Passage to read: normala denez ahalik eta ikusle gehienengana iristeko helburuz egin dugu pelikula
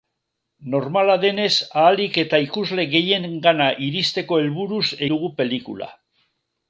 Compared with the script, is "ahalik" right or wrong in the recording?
right